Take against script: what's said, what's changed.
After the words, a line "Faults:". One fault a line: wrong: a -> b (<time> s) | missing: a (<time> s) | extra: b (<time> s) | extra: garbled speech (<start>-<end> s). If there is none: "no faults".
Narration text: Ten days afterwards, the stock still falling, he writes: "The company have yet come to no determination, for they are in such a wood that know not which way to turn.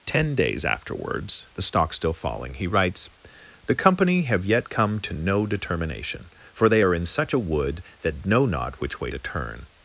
Ten days afterwards, the stock still falling, he writes: "The company have yet come to no determination, for they are in such a wood that know not which way to turn.
Faults:
no faults